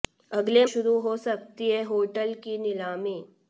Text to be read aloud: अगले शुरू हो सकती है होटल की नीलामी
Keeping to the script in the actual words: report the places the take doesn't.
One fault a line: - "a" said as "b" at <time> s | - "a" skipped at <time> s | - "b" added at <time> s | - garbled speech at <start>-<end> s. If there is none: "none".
none